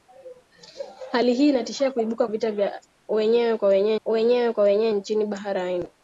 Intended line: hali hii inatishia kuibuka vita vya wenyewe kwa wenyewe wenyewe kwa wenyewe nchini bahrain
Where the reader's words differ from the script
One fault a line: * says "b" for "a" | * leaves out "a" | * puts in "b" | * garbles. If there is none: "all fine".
all fine